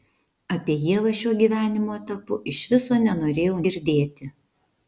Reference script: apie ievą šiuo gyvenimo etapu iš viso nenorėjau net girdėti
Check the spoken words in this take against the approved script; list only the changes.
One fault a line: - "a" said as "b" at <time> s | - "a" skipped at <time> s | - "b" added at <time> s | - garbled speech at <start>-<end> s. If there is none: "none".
- "net" skipped at 3.6 s